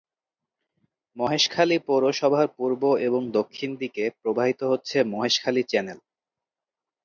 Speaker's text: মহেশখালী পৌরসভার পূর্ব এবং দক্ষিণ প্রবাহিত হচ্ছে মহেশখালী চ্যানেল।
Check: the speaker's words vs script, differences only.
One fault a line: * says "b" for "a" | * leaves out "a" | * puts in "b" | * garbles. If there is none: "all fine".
* puts in "দিকে"